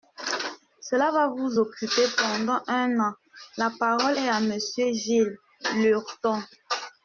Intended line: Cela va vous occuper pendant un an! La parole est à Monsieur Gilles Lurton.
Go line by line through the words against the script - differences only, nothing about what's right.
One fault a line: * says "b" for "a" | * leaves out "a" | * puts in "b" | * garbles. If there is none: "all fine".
all fine